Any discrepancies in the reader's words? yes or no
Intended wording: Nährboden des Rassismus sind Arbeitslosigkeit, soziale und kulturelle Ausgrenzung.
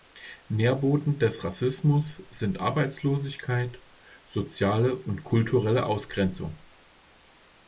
no